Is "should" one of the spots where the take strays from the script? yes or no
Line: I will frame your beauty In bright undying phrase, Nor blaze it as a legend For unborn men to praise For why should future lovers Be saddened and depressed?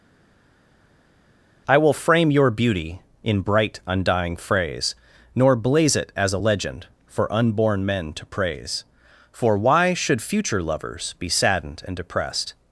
no